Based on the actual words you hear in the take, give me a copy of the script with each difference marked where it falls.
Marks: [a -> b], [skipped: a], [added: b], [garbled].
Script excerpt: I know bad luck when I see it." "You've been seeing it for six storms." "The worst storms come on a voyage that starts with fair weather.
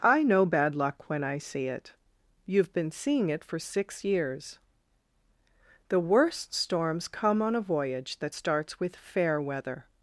I know bad luck when I see it." "You've been seeing it for six [storms." -> years] "The worst storms come on a voyage that starts with fair weather.